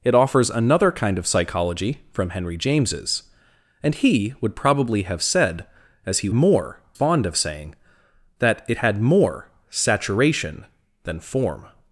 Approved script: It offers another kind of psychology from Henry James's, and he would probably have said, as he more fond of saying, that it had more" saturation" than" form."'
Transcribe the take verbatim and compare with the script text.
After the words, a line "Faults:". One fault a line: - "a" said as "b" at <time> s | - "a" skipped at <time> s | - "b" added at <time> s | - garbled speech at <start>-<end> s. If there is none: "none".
It offers another kind of psychology from Henry James's, and he would probably have said, as he more fond of saying, that it had more" saturation" than" form."'
Faults:
none